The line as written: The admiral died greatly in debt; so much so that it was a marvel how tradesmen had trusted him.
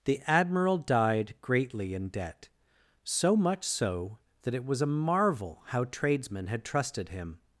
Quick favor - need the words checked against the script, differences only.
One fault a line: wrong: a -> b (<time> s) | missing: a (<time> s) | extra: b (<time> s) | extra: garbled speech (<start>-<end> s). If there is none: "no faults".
no faults